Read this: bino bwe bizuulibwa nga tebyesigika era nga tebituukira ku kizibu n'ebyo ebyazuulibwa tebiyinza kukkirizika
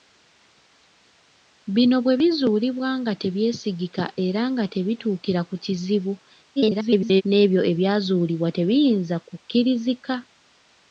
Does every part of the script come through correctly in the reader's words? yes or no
no